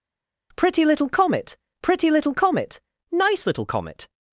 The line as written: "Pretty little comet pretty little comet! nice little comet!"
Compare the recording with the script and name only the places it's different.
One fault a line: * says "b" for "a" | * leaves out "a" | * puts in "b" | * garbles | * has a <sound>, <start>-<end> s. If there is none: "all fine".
all fine